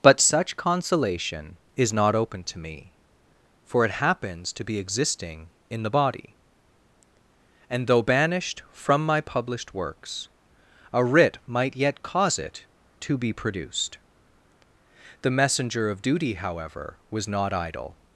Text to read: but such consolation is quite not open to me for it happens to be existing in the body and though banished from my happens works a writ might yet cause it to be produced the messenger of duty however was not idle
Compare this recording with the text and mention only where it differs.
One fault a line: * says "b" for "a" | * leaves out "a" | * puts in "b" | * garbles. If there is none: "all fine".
* leaves out "quite"
* says "published" for "happens"